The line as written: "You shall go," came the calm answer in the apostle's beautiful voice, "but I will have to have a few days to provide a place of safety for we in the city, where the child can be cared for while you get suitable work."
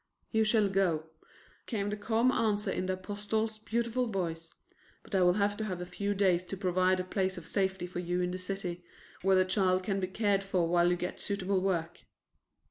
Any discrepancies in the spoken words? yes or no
yes